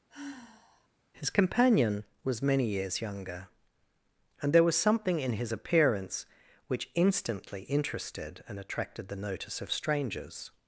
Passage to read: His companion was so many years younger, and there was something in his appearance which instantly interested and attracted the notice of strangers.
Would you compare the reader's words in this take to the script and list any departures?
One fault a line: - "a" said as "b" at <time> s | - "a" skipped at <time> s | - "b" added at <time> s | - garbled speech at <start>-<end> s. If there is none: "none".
- "so" skipped at 2.4 s